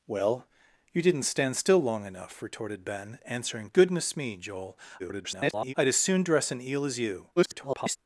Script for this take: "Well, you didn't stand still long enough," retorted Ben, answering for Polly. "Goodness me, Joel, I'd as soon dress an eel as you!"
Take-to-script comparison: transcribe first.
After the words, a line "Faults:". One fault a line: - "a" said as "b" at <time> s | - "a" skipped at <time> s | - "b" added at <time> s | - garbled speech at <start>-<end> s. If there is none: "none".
"Well, you didn't stand still long enough," retorted Ben, answering. "Goodness me, Joel, [garbled] I'd as soon dress an eel as you!" [garbled]
Faults:
- "for Polly" skipped at 3.7 s
- garbled speech at 5.0-5.7 s
- garbled speech at 7.4-8.0 s